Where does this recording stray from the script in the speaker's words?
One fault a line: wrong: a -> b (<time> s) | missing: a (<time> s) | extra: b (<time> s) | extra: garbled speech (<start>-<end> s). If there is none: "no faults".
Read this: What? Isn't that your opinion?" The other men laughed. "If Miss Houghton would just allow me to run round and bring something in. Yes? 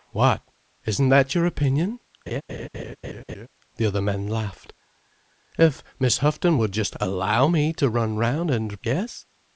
missing: bring something in (8.8 s)